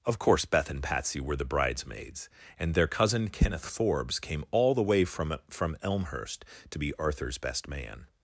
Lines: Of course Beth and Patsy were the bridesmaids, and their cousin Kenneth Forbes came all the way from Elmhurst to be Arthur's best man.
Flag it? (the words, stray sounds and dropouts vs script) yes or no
yes